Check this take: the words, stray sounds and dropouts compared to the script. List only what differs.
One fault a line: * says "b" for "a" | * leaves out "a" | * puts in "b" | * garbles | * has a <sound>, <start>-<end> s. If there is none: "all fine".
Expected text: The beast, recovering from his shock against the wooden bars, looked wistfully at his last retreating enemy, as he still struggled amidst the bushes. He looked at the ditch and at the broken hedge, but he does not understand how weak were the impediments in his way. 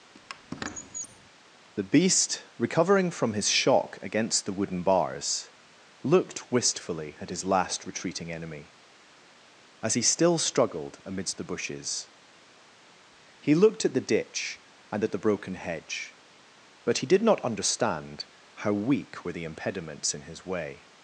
* has a squeak, 0.1-1.3 s
* says "did" for "does"